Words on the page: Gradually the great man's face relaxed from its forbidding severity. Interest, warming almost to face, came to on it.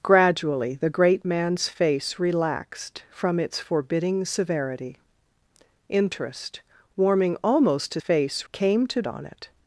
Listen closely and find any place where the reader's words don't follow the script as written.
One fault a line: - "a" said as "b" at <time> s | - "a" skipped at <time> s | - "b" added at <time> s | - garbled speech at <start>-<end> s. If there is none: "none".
none